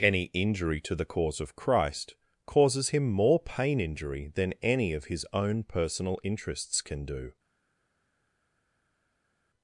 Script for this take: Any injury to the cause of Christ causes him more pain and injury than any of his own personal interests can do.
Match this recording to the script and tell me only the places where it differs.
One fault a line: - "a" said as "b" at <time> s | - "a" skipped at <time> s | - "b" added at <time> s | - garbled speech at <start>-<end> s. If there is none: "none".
- "and" skipped at 3.8 s